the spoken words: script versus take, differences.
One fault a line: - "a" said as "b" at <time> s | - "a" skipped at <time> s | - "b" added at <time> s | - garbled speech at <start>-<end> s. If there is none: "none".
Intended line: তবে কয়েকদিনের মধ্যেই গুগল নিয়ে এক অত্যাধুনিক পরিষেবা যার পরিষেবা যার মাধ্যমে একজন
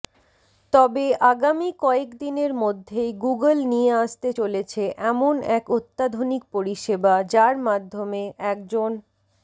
- "আগামী" added at 1.3 s
- "আসতে চলেছে এমন" added at 4.0 s
- "পরিষেবা যার" skipped at 7.5 s